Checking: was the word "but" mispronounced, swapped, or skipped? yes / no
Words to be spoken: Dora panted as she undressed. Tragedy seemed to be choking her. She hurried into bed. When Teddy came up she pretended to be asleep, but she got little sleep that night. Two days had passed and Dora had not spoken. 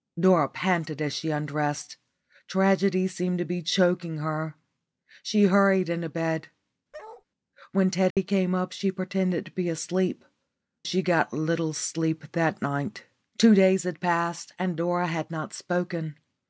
yes